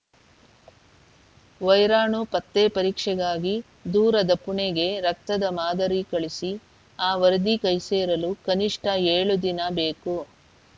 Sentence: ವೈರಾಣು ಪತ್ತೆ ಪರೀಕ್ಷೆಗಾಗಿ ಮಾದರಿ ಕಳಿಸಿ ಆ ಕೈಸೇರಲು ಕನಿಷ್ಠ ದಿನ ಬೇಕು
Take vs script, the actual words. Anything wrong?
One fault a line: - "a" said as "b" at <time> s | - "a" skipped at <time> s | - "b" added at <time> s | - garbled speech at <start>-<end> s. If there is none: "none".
- "ದೂರದ ಪುಣೆಗೆ ರಕ್ತದ" added at 3.9 s
- "ವರದಿ" added at 7.2 s
- "ಏಳು" added at 9.1 s